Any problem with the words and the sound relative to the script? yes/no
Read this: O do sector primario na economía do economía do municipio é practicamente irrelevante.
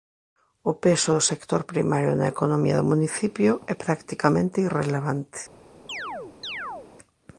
yes